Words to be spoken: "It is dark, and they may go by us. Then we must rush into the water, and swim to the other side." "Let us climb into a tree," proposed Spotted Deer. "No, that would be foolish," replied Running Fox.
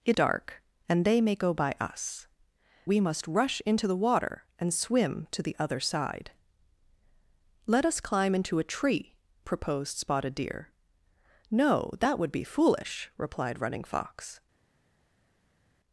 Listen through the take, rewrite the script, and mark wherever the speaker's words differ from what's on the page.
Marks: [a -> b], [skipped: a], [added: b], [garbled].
"It [skipped: is] dark, and they may go by us. [skipped: Then] we must rush into the water, and swim to the other side." "Let us climb into a tree," proposed Spotted Deer. "No, that would be foolish," replied Running Fox.